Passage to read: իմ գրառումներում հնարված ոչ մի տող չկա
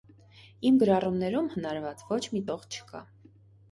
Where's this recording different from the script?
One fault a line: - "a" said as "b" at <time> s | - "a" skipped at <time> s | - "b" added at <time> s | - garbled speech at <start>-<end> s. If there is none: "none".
none